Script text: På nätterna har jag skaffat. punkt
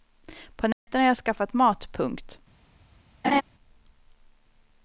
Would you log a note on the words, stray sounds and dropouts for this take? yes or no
yes